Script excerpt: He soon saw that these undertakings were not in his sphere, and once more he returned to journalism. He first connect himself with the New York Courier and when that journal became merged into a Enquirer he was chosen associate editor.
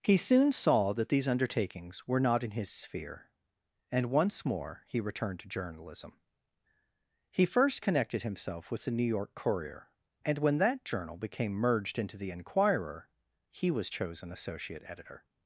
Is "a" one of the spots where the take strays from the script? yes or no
yes